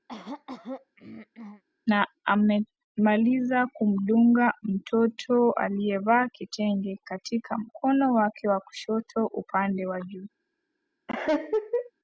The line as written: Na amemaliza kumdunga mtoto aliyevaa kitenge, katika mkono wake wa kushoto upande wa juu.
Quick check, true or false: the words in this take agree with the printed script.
true